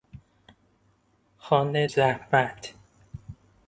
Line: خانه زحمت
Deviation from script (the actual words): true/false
false